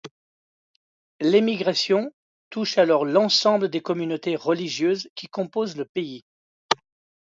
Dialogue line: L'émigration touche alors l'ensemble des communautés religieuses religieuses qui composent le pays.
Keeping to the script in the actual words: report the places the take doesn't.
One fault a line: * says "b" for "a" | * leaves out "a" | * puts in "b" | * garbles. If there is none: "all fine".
* leaves out "religieuses"